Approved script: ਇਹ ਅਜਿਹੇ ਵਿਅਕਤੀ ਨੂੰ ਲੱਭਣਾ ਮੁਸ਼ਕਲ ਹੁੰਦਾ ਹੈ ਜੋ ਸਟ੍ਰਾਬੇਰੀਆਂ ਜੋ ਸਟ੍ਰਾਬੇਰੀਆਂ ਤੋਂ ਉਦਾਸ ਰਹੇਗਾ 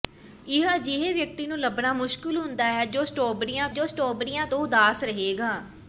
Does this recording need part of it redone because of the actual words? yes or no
no